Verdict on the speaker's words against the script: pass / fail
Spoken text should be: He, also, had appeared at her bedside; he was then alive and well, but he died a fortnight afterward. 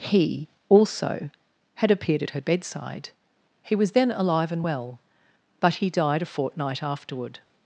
pass